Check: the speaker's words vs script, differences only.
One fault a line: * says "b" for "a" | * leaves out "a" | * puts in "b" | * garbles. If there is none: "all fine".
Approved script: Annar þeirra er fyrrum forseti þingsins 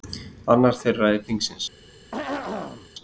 * leaves out "fyrrum forseti"